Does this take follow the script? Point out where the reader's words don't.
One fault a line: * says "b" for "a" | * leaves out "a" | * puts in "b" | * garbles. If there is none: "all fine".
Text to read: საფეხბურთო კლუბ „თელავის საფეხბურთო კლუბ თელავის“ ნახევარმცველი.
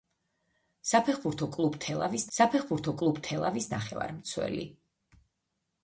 all fine